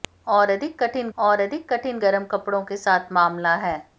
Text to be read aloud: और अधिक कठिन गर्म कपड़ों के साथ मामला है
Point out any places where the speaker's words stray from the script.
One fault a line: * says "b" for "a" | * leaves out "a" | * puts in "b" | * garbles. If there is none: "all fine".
* puts in "और अधिक कठिन"